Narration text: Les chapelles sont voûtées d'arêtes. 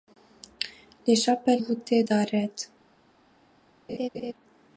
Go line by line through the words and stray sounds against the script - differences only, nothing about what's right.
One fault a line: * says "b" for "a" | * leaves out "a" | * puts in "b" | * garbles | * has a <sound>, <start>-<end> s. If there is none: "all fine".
* leaves out "sont"
* has a laugh, 3.9-4.3 s